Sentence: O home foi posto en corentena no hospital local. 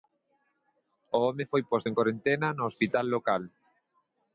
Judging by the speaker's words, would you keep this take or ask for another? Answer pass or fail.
pass